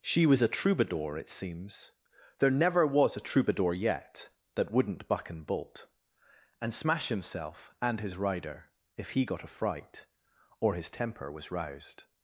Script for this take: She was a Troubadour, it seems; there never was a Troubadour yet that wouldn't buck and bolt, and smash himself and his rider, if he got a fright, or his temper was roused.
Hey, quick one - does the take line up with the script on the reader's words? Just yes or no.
yes